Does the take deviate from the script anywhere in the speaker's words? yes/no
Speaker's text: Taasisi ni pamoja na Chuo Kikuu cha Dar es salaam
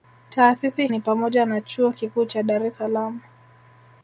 no